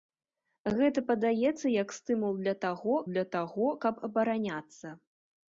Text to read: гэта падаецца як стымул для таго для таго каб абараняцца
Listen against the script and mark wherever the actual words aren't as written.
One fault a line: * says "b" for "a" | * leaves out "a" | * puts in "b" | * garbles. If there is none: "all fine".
all fine